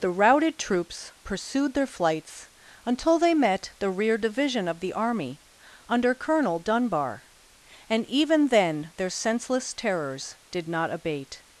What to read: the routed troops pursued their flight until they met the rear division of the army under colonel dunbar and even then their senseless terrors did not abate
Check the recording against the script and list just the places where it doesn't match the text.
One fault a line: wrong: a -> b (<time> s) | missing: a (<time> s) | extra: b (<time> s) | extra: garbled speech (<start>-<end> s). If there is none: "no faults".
wrong: flight -> flights (1.9 s)